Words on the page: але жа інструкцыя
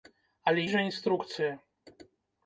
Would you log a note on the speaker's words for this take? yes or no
no